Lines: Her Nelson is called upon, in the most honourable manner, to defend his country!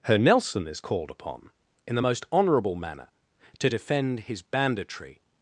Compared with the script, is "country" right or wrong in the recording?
wrong